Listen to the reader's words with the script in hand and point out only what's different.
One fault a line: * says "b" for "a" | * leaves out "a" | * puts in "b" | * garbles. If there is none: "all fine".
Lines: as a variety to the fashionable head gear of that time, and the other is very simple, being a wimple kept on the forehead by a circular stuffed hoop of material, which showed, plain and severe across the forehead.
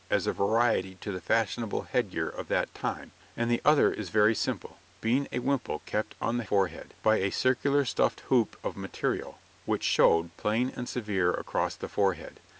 all fine